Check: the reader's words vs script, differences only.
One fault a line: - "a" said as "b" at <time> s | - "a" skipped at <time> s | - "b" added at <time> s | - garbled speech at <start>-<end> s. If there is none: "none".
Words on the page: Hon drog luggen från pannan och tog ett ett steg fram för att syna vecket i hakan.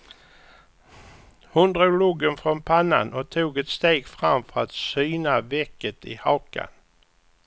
- "ett" skipped at 3.7 s